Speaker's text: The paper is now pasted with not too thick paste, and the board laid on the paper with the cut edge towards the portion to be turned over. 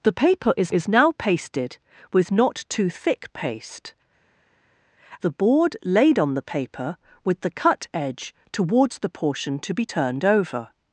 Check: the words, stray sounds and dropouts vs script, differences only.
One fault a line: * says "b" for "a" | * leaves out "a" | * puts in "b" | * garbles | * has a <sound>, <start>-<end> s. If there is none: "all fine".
* puts in "is"
* leaves out "and"